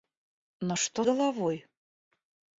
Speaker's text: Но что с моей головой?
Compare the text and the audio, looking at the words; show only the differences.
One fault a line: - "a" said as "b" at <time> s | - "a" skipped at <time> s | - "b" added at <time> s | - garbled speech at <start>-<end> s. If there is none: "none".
- "с моей" skipped at 1.0 s